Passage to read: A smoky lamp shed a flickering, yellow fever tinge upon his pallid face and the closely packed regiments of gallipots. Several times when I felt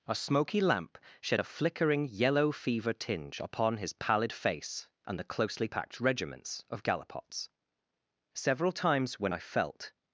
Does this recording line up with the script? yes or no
yes